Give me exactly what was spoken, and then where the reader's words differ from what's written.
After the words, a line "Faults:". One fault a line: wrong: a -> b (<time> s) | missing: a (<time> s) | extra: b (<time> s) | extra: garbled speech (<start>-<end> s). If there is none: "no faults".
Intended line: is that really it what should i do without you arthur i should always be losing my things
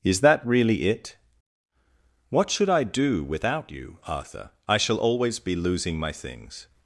is that really it what should i do without you arthur i shall always be losing my things
Faults:
wrong: should -> shall (4.8 s)